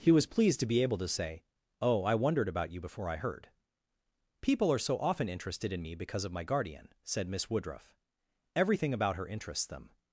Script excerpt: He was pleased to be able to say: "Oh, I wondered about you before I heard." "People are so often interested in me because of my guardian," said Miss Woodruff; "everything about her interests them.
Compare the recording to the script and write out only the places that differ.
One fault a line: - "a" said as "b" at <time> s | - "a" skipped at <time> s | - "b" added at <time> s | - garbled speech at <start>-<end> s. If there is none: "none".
none